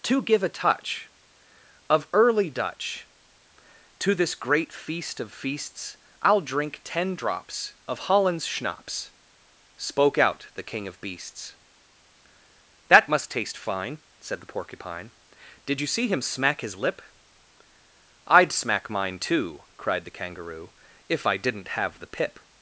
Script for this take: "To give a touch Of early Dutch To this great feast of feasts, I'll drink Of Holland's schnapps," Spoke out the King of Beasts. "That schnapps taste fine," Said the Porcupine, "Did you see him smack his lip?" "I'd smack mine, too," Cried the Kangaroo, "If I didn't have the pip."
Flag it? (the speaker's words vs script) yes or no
yes